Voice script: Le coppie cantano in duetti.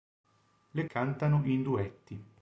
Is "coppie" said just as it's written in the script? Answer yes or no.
no